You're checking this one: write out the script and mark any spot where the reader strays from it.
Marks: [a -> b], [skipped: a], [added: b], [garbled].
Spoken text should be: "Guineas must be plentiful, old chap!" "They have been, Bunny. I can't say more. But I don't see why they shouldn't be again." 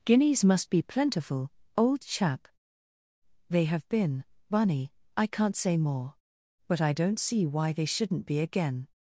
"Guineas must be plentiful, old chap!" "They have been, Bunny. I can't say more. But I don't see why they shouldn't be again."